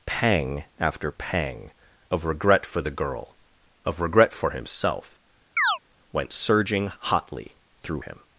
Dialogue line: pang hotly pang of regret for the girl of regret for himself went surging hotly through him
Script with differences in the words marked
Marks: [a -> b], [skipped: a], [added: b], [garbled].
pang [hotly -> after] pang of regret for the girl of regret for himself went surging hotly through him